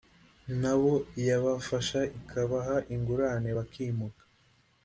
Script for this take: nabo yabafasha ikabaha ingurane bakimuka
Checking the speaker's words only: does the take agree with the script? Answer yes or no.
yes